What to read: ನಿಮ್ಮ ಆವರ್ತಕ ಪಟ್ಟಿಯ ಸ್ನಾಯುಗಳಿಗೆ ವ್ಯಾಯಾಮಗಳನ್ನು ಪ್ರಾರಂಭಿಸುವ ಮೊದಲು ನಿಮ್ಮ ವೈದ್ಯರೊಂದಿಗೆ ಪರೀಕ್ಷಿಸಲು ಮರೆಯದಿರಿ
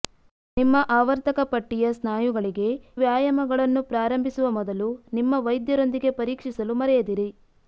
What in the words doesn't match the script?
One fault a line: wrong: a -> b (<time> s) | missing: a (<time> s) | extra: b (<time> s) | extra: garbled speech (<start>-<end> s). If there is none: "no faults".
no faults